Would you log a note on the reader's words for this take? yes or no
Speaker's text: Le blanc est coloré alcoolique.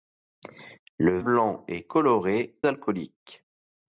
no